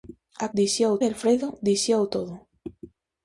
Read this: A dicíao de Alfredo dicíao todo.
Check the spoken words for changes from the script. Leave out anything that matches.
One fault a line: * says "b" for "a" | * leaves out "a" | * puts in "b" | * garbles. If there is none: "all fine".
all fine